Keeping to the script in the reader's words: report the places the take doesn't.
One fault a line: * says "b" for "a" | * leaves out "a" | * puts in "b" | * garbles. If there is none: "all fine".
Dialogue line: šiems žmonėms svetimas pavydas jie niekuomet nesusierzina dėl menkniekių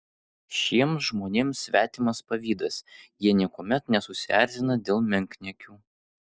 all fine